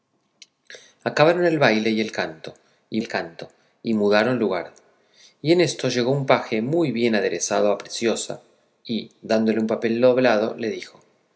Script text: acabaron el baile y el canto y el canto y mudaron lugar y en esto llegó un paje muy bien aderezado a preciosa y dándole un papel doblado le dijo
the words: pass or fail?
pass